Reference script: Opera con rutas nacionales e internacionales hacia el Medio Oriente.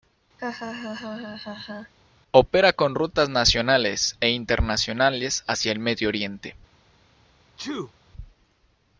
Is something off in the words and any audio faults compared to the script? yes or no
yes